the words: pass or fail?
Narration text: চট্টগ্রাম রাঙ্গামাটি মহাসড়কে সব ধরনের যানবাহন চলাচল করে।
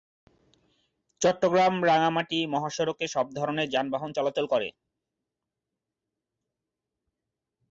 pass